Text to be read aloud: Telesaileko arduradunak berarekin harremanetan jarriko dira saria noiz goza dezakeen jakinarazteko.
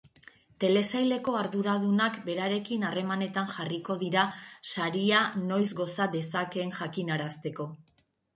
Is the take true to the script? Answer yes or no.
yes